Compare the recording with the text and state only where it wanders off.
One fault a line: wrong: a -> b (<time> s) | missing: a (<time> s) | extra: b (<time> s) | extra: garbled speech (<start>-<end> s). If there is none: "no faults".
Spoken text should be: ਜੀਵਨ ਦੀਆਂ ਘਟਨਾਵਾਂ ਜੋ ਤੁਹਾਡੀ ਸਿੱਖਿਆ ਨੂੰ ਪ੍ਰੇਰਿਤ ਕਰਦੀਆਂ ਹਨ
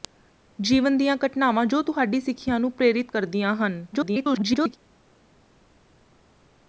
extra: garbled speech (3.9-4.8 s)